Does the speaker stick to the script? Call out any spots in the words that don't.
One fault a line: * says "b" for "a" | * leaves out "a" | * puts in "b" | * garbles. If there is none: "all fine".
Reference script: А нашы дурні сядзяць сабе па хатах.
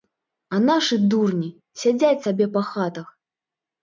all fine